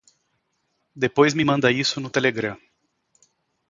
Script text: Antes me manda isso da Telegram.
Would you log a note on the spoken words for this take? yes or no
yes